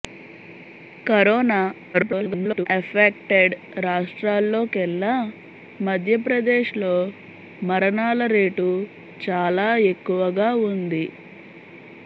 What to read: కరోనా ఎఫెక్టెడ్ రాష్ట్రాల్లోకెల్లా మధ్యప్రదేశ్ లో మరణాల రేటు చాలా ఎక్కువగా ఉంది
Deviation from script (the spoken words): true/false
true